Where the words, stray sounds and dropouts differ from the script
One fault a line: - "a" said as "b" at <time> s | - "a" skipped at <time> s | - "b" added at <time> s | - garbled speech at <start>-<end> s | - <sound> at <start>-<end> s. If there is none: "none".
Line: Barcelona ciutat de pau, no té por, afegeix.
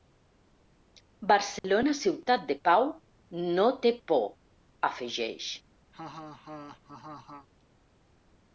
- dropout at 1.6-1.6 s
- laugh at 5.9-7.5 s